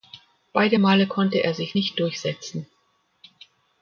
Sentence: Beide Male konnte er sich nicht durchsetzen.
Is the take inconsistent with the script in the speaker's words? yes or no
no